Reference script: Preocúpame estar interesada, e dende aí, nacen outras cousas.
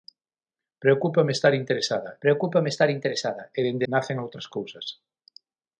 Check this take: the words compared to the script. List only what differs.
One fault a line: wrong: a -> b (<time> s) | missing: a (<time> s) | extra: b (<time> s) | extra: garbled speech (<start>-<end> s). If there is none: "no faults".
extra: preocúpame estar interesada (2.2 s)
missing: aí (3.9 s)